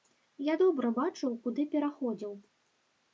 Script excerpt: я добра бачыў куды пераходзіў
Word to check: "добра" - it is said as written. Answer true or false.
true